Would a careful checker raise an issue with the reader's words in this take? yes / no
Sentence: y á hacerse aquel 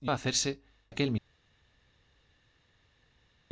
no